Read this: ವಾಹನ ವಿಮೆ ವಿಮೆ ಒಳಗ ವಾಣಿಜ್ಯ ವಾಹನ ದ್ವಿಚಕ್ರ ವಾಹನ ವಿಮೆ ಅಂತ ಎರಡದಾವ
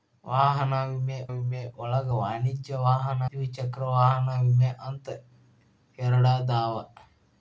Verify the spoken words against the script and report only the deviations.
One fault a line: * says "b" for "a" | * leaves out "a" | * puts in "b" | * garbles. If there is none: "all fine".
all fine